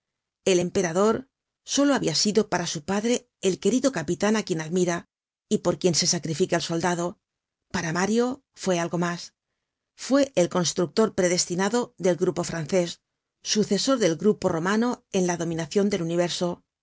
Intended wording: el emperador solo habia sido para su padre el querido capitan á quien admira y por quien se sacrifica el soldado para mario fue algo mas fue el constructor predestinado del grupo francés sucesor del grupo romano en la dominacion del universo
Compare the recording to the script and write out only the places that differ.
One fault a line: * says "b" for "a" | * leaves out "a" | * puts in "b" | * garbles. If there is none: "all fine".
all fine